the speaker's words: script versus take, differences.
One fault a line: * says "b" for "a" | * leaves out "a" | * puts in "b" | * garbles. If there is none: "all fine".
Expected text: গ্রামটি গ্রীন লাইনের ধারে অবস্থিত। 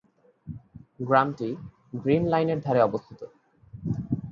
all fine